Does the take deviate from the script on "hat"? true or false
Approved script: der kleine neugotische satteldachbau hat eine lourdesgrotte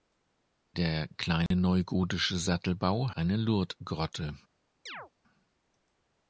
true